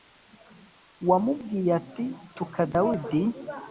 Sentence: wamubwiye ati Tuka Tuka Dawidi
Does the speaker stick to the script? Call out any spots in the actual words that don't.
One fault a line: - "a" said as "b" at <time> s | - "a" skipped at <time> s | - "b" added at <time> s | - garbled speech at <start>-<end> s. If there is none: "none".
- "Tuka" skipped at 2.6 s